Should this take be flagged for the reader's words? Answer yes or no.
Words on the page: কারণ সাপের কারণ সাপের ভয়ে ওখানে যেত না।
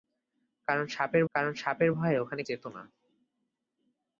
no